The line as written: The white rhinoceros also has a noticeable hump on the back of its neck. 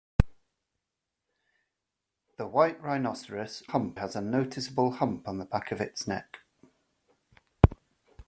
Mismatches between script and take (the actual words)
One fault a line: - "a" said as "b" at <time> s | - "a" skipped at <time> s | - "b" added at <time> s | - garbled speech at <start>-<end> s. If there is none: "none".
- "also" said as "hump" at 3.6 s